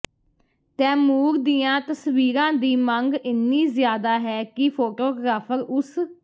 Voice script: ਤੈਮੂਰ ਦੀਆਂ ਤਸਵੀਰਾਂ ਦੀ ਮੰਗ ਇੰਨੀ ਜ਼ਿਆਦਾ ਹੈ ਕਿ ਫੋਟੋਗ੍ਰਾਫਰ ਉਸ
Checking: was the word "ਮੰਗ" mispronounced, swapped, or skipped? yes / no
no